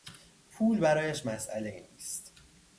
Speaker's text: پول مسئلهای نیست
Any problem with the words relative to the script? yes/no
yes